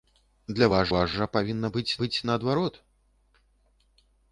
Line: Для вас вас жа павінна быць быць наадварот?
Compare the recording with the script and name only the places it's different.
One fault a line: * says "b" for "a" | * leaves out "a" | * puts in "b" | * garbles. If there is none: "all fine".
all fine